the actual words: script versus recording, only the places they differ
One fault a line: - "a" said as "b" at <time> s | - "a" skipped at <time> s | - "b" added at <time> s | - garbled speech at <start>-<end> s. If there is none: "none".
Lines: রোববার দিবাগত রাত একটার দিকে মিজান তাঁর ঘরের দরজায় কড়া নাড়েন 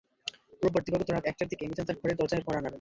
none